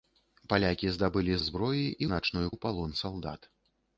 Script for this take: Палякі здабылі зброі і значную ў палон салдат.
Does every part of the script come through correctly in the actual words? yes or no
yes